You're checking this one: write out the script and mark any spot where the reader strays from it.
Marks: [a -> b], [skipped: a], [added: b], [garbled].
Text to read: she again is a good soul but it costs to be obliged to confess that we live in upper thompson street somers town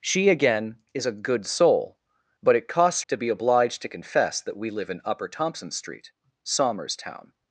she again is a good soul but it costs to be obliged to confess that we live in upper thompson street somers town